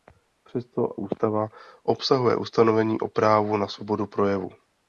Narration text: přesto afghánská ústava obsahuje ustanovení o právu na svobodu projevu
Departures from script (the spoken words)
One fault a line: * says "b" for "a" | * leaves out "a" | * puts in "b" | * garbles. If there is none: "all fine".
* leaves out "afghánská"